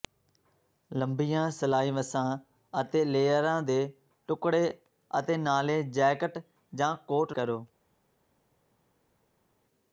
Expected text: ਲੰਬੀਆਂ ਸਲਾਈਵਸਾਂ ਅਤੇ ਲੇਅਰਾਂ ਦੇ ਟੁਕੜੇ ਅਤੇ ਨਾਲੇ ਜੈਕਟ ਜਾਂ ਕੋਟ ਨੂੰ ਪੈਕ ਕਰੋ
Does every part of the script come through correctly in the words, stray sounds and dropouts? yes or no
no